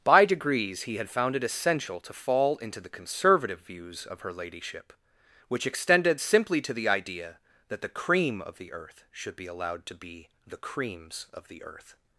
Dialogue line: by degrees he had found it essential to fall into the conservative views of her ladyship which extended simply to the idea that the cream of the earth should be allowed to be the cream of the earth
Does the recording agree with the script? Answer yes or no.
no